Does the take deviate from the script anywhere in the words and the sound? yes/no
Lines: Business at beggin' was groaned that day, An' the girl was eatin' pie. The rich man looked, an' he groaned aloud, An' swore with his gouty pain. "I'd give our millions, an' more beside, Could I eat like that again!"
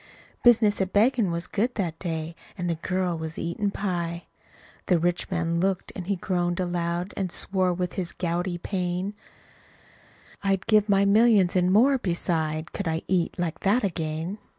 yes